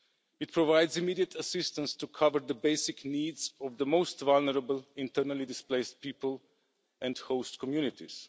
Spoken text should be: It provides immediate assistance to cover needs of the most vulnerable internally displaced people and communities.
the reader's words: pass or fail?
fail